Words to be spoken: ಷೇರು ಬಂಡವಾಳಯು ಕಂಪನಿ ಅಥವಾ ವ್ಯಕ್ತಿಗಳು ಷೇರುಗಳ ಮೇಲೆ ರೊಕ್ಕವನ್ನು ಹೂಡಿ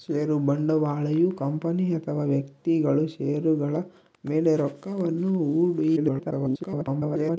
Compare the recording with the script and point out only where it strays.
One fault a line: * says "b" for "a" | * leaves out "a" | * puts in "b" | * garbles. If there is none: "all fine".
* garbles